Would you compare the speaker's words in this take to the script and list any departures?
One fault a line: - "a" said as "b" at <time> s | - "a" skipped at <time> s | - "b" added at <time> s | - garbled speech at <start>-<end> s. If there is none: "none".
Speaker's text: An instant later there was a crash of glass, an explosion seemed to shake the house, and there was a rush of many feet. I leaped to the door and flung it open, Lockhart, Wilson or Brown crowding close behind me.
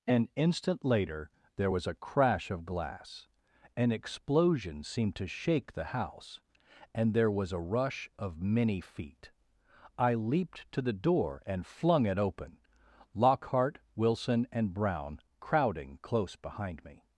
- "or" said as "and" at 14.5 s